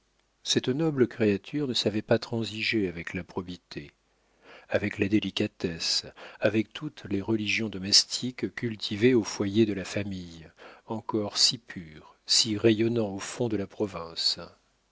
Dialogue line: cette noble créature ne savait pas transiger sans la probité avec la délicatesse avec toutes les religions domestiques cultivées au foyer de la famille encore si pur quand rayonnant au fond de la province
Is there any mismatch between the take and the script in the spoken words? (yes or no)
yes